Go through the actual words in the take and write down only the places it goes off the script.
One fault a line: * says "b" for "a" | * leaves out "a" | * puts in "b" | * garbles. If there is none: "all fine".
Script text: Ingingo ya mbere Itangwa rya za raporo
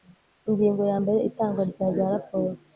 all fine